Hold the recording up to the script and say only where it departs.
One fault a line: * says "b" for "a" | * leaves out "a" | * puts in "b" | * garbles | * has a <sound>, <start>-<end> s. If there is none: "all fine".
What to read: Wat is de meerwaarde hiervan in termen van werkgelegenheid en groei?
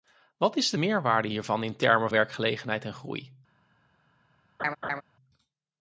* leaves out "van"
* has a laugh, 4.6-5.0 s